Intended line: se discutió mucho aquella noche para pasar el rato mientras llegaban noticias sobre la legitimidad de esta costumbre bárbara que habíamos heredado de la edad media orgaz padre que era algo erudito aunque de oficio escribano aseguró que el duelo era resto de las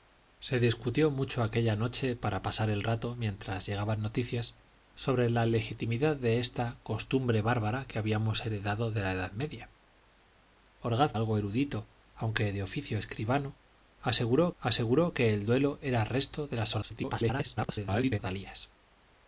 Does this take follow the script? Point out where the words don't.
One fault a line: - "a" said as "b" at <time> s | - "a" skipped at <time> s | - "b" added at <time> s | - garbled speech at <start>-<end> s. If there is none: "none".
- "padre que era" skipped at 11.1 s
- "aseguró" added at 14.6 s
- garbled speech at 16.8-18.2 s